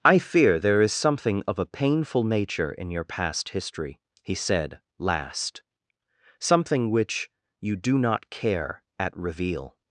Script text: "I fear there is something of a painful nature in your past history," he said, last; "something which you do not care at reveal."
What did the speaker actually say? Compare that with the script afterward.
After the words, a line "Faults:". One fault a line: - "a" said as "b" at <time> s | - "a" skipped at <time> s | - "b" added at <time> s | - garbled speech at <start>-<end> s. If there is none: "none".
"I fear there is something of a painful nature in your past history," he said, last; "something which you do not care at reveal."
Faults:
none